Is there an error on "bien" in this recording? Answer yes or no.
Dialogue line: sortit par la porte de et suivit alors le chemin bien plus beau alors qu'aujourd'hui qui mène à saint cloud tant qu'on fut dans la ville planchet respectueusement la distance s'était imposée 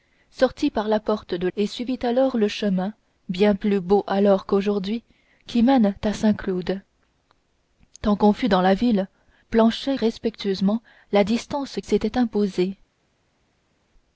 no